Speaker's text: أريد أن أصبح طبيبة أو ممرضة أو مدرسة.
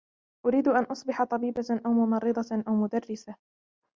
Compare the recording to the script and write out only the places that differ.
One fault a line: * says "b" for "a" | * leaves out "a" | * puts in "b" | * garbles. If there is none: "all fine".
all fine